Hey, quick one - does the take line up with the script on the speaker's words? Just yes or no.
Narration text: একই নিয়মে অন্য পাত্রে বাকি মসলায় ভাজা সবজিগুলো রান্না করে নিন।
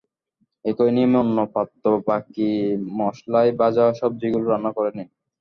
yes